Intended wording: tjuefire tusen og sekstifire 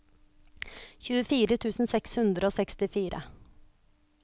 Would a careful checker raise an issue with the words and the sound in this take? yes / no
yes